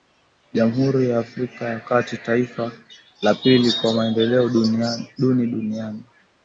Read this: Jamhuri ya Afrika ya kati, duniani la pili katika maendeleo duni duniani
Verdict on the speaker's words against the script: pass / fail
fail